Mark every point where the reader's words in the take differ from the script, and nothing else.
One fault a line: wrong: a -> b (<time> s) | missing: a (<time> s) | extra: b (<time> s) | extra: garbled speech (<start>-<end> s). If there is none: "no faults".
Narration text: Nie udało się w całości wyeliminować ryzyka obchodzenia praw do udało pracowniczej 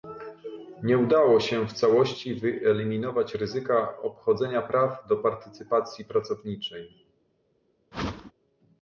wrong: udało -> partycypacji (5.2 s)